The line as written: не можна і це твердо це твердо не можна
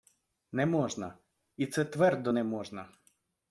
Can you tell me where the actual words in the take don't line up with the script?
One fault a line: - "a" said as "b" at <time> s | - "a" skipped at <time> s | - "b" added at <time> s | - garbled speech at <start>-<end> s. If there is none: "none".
- "це твердо" skipped at 2.3 s